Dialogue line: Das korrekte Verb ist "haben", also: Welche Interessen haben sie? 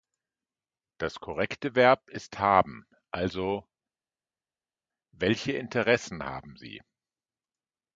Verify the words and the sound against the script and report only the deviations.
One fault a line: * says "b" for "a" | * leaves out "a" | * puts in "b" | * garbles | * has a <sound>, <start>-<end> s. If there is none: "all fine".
all fine